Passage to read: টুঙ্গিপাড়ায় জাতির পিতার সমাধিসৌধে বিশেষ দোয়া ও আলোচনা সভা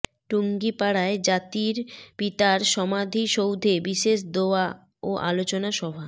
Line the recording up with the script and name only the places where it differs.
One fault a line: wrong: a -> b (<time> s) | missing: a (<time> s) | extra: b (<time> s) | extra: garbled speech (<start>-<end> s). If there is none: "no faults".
no faults